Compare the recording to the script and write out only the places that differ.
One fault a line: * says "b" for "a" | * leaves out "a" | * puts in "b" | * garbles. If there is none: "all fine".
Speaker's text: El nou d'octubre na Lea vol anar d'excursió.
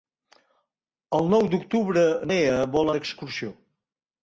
* leaves out "na"
* leaves out "anar"